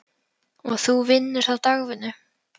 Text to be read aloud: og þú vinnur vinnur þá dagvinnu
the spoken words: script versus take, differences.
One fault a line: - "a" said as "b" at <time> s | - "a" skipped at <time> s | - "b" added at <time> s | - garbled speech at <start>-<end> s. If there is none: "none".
- "vinnur" skipped at 1.5 s